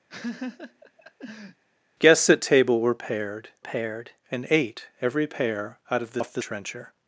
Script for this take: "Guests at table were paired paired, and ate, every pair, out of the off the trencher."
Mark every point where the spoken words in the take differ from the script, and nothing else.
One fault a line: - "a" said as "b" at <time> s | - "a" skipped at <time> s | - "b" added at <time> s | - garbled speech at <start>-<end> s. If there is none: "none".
none